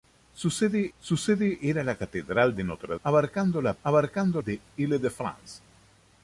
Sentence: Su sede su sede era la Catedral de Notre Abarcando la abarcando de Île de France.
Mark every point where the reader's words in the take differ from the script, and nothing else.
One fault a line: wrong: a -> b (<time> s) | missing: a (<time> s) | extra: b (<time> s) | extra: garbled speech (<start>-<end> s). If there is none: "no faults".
no faults